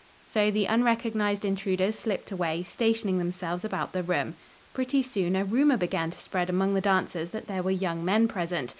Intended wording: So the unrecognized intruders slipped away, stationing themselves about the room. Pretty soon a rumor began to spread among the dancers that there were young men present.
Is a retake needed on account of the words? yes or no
no